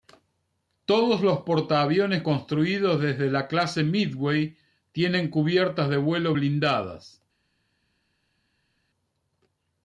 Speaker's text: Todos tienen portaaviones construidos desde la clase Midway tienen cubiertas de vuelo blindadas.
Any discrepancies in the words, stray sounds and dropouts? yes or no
yes